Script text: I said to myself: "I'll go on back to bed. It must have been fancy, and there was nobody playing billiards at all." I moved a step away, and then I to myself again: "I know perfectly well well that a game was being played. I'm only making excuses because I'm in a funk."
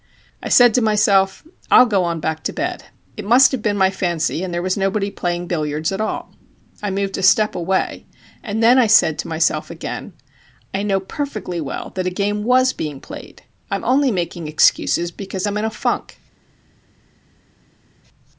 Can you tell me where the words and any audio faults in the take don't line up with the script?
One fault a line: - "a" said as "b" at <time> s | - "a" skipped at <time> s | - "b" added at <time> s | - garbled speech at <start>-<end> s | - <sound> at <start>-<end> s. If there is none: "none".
- "my" added at 3.8 s
- "said" added at 8.9 s
- "well" skipped at 11.9 s